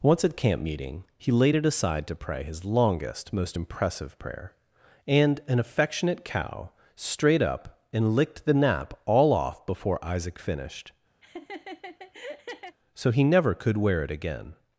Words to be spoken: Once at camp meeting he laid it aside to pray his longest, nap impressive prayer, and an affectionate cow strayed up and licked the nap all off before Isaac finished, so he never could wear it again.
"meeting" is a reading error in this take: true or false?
false